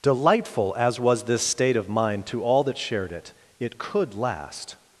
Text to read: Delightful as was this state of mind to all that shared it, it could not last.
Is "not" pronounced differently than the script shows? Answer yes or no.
yes